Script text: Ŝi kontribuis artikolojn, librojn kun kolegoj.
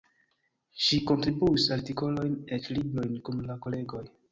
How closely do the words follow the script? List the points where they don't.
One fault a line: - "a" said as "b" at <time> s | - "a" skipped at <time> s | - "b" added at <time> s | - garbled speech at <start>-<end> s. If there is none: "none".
- "eĉ" added at 2.6 s
- "la" added at 3.5 s